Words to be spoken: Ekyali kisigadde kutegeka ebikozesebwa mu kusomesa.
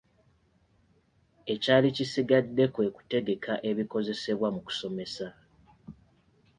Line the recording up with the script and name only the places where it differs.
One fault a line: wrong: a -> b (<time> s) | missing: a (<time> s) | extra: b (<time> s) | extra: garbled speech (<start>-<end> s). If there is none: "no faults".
extra: kwe (2.7 s)